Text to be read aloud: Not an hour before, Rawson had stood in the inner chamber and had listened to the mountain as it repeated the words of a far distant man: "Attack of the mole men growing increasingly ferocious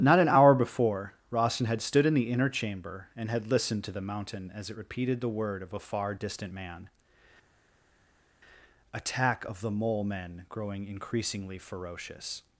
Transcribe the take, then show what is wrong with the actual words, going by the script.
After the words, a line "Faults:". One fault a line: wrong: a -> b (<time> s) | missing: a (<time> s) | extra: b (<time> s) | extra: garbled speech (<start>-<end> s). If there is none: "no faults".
Not an hour before, Rawson had stood in the inner chamber and had listened to the mountain as it repeated the word of a far distant man: "Attack of the mole men growing increasingly ferocious
Faults:
wrong: words -> word (5.3 s)